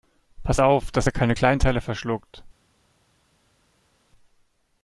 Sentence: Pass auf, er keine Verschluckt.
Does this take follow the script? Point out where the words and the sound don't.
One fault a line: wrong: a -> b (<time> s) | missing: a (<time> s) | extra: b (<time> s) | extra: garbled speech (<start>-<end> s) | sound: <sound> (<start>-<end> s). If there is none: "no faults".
extra: dass (0.9 s)
extra: Kleinteile (1.3 s)